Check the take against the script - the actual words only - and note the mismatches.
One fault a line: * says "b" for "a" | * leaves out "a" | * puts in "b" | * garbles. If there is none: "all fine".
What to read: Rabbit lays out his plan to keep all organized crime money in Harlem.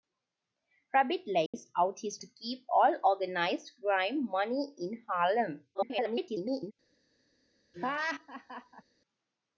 * leaves out "plan"
* garbles